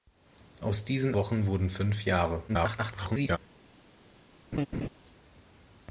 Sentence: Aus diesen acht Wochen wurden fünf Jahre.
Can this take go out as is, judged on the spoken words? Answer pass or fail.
fail